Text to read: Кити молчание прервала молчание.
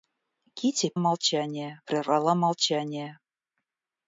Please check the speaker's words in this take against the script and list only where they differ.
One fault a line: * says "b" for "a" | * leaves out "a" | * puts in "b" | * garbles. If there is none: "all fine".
all fine